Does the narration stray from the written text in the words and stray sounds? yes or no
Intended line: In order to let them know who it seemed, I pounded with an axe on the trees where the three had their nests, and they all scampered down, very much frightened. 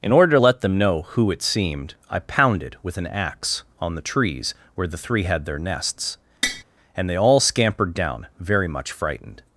yes